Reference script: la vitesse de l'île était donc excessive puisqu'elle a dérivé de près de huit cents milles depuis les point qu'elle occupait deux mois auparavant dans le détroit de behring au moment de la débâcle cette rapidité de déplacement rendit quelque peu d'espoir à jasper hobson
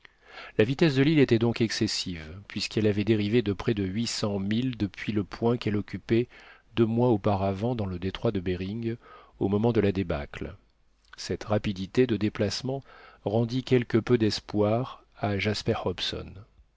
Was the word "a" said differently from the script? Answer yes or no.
yes